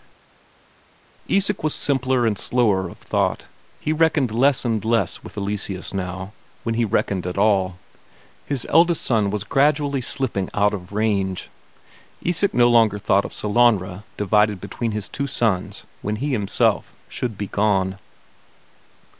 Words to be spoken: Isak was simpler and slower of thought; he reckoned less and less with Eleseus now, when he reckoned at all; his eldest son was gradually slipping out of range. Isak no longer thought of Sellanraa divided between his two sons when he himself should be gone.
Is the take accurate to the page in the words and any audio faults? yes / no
yes